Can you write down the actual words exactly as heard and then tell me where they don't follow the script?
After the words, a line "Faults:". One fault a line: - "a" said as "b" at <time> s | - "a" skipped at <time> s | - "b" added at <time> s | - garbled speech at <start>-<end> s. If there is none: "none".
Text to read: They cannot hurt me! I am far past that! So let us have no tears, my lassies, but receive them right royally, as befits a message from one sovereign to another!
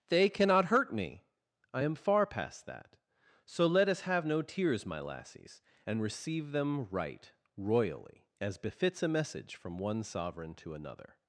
They cannot hurt me! I am far past that! So let us have no tears, my lassies, and receive them right royally, as befits a message from one sovereign to another!
Faults:
- "but" said as "and" at 5.8 s